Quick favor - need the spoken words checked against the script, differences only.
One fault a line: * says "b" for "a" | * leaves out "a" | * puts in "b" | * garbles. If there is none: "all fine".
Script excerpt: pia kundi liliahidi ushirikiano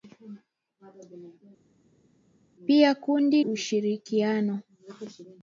* leaves out "liliahidi"